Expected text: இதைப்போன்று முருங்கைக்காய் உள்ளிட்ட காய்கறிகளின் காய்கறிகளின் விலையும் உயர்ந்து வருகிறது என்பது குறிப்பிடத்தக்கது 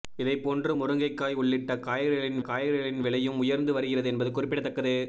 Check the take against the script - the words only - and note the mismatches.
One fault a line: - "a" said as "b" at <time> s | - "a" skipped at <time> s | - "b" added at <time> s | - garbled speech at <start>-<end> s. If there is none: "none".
none